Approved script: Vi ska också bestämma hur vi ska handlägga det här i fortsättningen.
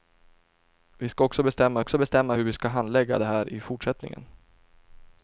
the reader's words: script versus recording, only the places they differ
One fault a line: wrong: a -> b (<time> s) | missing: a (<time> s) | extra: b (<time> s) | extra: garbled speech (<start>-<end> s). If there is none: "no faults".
extra: också bestämma (1.8 s)